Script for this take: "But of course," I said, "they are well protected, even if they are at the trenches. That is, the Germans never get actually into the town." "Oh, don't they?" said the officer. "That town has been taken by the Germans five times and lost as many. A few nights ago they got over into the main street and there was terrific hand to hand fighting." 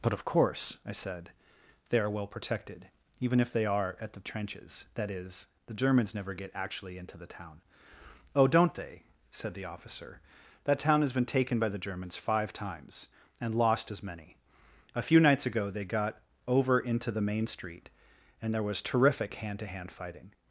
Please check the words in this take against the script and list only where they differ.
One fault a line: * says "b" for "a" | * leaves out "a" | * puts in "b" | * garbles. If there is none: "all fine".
all fine